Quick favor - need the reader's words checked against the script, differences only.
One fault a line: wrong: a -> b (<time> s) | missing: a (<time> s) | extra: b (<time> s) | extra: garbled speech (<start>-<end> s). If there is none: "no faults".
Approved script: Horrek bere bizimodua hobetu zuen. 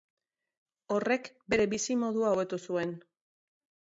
no faults